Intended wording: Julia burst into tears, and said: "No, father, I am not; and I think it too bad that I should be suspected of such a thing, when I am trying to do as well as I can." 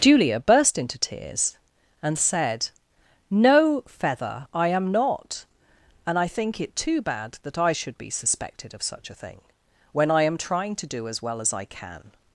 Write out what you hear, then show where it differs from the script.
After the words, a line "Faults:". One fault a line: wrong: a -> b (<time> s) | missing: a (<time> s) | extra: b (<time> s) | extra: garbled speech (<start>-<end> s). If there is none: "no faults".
Julia burst into tears, and said: "No, feather, I am not; and I think it too bad that I should be suspected of such a thing, when I am trying to do as well as I can."
Faults:
wrong: father -> feather (3.9 s)